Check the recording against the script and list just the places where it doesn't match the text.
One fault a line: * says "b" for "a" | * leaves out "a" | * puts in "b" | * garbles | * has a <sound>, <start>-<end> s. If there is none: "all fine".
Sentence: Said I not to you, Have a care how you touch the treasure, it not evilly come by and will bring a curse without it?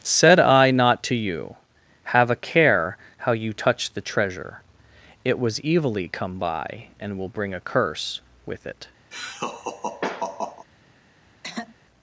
* says "was" for "not"
* says "with" for "without"
* has a laugh, 9.1-10.7 s
* has a throat clearing, 11.4-11.8 s